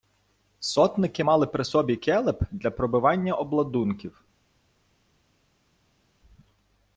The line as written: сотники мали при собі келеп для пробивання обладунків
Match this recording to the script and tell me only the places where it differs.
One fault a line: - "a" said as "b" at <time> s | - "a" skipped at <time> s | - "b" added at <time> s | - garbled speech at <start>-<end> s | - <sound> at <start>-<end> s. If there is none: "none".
none